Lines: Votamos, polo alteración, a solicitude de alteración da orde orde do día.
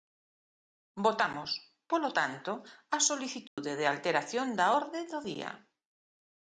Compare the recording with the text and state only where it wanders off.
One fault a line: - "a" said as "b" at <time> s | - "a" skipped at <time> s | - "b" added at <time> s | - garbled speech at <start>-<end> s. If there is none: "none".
- "alteración" said as "tanto" at 2.2 s
- "orde" skipped at 5.0 s